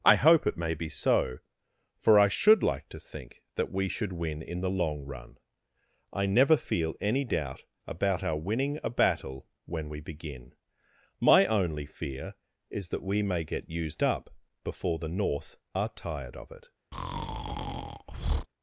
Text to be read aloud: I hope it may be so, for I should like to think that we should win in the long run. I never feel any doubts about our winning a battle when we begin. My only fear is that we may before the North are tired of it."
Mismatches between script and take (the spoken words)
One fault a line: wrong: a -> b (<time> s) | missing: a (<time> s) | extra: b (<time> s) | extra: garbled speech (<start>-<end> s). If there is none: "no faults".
wrong: doubts -> doubt (7.2 s)
extra: get used up (13.4 s)